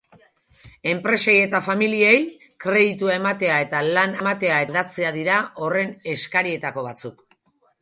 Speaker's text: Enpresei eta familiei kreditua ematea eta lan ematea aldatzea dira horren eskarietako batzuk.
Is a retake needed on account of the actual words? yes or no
no